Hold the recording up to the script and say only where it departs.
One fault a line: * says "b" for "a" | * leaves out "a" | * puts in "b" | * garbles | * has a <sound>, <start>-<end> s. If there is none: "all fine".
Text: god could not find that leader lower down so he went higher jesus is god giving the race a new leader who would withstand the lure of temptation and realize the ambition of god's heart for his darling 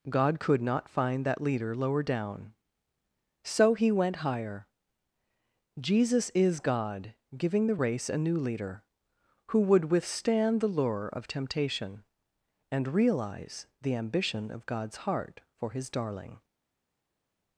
all fine